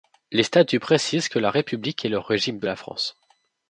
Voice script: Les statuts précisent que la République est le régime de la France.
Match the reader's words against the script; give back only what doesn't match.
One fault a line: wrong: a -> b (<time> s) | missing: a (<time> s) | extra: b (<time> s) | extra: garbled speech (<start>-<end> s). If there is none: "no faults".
no faults